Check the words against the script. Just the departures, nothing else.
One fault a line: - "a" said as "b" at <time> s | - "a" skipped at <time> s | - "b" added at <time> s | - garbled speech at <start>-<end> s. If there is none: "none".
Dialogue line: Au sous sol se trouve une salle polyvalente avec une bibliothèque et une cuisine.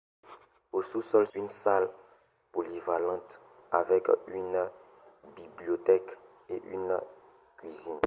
- "se trouve" skipped at 1.3 s